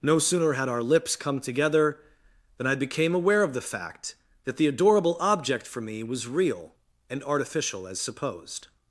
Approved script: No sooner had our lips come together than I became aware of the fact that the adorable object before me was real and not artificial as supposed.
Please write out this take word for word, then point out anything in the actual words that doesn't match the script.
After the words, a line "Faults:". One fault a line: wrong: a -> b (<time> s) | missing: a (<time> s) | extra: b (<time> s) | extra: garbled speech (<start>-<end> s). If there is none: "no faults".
No sooner had our lips come together than I became aware of the fact that the adorable object for me was real and artificial as supposed.
Faults:
wrong: before -> for (5.7 s)
missing: not (7.2 s)